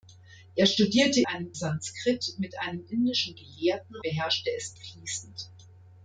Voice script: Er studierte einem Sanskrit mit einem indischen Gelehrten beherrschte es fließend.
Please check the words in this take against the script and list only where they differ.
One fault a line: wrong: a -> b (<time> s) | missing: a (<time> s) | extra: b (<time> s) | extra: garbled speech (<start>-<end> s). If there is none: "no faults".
no faults